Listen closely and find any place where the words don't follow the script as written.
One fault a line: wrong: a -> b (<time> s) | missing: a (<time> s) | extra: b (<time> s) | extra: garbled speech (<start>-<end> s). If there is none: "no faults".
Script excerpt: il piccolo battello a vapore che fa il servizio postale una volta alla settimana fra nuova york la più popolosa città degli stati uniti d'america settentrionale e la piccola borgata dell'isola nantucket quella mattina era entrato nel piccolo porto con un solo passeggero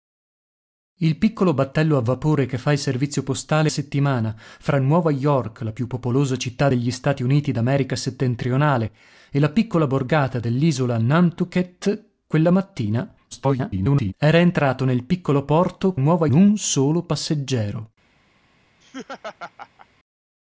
missing: una volta alla (3.7 s)
extra: garbled speech (13.3-14.1 s)
wrong: con -> nuova (15.9 s)